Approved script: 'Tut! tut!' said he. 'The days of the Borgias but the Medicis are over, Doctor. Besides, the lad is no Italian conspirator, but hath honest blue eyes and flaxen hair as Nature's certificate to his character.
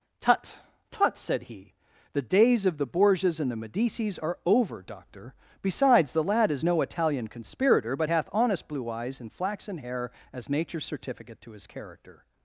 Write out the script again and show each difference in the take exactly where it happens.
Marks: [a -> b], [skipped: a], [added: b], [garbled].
'Tut! tut!' said he. 'The days of the Borgias [but -> and] the Medicis are over, Doctor. Besides, the lad is no Italian conspirator, but hath honest blue eyes and flaxen hair as Nature's certificate to his character.